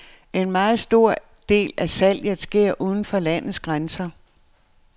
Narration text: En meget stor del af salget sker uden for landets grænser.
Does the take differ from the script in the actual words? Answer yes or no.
no